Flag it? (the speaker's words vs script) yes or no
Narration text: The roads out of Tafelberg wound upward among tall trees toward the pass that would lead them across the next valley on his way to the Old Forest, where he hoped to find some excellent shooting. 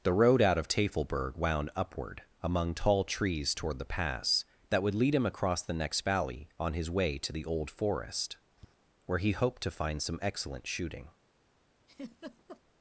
yes